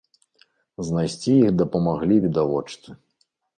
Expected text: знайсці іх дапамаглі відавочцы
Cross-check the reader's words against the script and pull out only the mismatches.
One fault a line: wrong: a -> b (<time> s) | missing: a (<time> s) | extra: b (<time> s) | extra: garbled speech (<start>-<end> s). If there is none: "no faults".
no faults